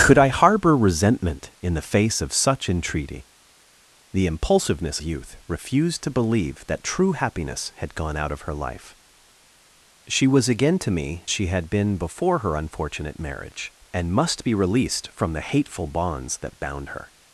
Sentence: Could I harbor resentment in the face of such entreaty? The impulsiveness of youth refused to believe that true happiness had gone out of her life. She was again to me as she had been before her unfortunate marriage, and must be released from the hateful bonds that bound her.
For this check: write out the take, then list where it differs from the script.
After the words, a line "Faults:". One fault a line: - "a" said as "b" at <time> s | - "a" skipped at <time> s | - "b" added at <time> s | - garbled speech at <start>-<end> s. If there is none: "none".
Could I harbor resentment in the face of such entreaty? The impulsiveness youth refused to believe that true happiness had gone out of her life. She was again to me she had been before her unfortunate marriage, and must be released from the hateful bonds that bound her.
Faults:
- "of" skipped at 5.0 s
- "as" skipped at 11.3 s